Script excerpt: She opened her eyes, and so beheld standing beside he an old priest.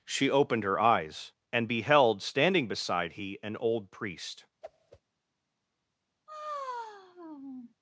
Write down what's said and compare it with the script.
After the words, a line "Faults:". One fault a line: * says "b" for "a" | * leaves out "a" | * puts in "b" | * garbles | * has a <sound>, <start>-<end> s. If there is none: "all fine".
She opened her eyes, and beheld standing beside he an old priest.
Faults:
* leaves out "so"
* has a whoosh, 4.6-5.0 s
* has a sigh, 6.3-7.7 s